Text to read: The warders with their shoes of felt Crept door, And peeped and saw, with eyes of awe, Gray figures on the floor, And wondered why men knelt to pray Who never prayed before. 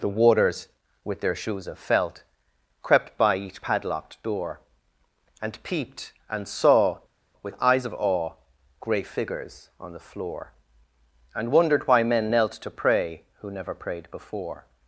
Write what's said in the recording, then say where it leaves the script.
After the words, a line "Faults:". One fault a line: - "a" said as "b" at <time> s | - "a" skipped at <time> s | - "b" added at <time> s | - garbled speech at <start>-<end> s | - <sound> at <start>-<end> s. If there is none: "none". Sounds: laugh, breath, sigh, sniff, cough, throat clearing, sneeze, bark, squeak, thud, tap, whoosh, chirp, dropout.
The warders with their shoes of felt Crept by each padlocked door, And peeped and saw, with eyes of awe, Gray figures on the floor, And wondered why men knelt to pray Who never prayed before.
Faults:
- "by each padlocked" added at 3.2 s